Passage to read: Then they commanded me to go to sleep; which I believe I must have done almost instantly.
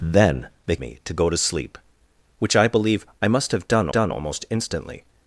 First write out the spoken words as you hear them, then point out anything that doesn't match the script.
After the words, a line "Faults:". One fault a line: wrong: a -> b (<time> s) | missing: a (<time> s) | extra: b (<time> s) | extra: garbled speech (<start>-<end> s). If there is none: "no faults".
Then they me to go to sleep; which I believe I must have done done almost instantly.
Faults:
missing: commanded (0.8 s)
extra: done (3.9 s)